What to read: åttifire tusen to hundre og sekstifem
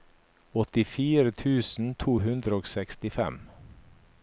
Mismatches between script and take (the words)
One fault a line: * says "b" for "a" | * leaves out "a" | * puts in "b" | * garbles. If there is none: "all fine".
all fine